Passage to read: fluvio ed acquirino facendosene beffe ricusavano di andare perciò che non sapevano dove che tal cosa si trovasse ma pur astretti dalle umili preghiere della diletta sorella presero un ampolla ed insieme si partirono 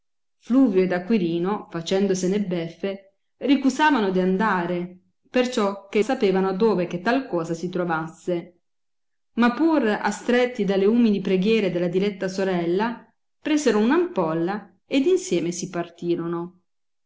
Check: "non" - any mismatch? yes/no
yes